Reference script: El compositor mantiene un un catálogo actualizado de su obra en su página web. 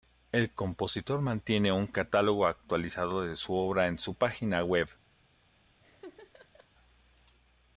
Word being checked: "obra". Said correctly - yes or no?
yes